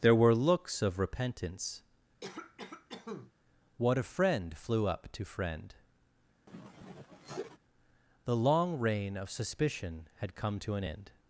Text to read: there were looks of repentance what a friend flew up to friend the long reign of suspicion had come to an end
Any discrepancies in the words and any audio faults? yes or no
yes